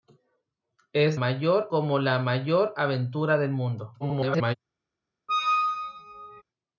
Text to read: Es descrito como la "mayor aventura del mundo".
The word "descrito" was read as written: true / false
false